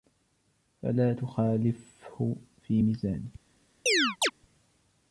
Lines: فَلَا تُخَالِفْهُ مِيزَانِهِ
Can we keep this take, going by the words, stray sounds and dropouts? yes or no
no